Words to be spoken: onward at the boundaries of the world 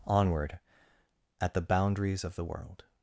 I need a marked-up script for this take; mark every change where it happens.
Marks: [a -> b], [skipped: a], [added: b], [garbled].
onward at the boundaries of the world